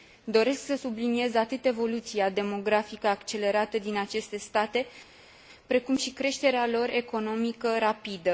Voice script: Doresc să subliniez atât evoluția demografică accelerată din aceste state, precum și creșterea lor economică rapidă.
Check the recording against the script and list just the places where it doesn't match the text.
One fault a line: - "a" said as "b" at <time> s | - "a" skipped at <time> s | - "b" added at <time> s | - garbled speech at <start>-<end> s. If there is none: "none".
none